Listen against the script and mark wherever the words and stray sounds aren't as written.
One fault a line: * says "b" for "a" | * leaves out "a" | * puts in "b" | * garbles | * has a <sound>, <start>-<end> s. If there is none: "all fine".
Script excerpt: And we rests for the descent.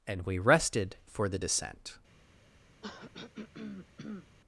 * says "rested" for "rests"
* has a throat clearing, 2.8-4.3 s